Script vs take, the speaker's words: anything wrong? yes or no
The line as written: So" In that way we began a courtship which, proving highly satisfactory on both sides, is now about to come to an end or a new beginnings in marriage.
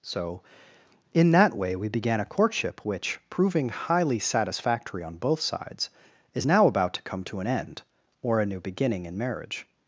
yes